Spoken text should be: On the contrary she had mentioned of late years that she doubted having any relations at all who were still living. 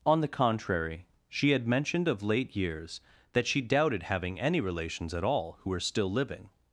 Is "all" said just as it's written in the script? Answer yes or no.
yes